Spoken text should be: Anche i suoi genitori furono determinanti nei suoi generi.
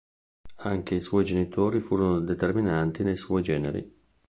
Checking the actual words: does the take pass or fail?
pass